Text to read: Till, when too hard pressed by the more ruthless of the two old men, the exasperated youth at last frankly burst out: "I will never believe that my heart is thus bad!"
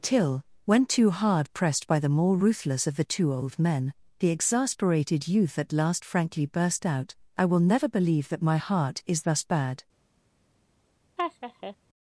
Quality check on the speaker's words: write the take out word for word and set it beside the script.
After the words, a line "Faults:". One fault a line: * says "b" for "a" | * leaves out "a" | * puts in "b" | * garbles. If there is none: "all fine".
Till, when too hard pressed by the more ruthless of the two old men, the exasperated youth at last frankly burst out: "I will never believe that my heart is thus bad!"
Faults:
all fine